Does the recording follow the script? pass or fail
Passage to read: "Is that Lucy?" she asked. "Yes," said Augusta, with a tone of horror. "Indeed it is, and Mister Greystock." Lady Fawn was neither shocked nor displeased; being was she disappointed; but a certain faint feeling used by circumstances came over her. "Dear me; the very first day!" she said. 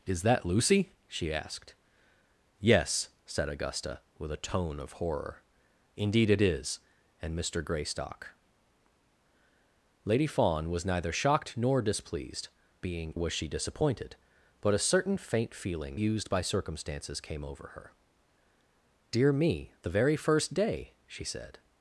pass